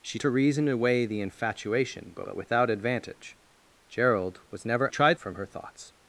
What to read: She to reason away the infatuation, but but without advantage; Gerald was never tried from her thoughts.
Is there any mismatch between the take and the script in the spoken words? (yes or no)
no